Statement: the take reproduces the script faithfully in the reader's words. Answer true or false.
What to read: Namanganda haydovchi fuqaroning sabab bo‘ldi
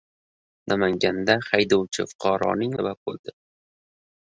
true